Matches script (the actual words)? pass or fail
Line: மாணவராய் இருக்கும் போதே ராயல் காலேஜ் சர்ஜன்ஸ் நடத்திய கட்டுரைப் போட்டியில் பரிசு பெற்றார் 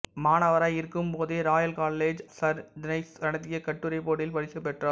pass